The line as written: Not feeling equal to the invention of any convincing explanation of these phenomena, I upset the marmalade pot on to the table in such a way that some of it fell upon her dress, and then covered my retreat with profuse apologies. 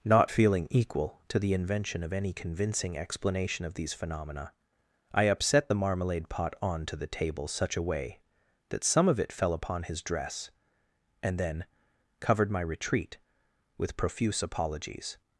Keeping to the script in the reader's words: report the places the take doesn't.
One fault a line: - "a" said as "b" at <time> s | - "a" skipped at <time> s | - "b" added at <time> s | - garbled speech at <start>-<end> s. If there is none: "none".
- "in" skipped at 7.5 s
- "her" said as "his" at 9.8 s